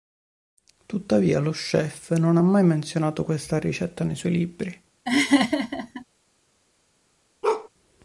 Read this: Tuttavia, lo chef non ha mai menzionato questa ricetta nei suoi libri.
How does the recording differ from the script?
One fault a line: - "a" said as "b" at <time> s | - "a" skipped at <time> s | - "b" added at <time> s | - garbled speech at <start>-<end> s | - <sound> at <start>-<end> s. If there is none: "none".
- laugh at 5.1-6.0 s
- bark at 7.4-7.7 s